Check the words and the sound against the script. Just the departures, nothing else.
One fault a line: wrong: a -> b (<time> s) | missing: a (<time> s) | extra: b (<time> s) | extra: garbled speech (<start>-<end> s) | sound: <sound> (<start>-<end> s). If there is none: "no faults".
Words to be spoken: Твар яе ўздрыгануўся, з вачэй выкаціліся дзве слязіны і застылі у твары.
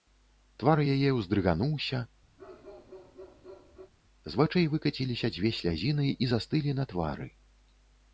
sound: bark (2.4-3.9 s)
wrong: у -> на (6.8 s)